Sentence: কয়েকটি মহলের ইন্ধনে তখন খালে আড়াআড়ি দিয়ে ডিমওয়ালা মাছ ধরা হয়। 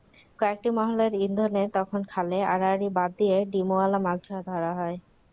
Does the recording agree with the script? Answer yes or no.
no